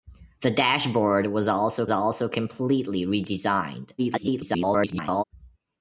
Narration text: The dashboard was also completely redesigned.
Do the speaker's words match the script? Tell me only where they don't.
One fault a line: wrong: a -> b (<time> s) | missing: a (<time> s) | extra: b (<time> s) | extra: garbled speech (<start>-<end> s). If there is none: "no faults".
extra: also (1.9 s)
extra: garbled speech (4.0-5.2 s)